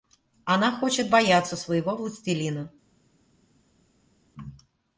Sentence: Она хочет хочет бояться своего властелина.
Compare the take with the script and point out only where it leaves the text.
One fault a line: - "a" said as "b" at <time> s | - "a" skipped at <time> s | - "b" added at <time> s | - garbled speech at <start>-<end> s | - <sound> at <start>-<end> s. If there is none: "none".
- "хочет" skipped at 1.1 s